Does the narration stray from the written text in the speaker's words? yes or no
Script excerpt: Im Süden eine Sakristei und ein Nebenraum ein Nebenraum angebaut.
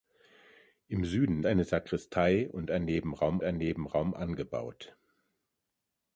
no